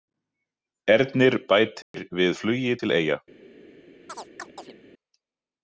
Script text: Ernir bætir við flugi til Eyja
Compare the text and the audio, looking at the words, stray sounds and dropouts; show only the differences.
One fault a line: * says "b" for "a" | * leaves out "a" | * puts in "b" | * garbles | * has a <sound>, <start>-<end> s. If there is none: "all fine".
* has a dropout, 1.8-1.9 s
* has a chirp, 4.1-4.7 s